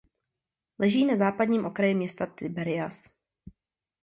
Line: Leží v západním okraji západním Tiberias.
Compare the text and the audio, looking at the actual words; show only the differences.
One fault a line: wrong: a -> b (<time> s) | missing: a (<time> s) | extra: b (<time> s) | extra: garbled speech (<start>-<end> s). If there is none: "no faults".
wrong: v -> na (1.1 s)
wrong: západním -> města (1.9 s)